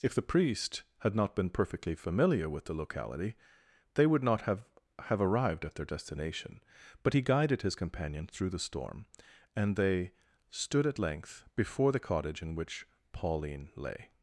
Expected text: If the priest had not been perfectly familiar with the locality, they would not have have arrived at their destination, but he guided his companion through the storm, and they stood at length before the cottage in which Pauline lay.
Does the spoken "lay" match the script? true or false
true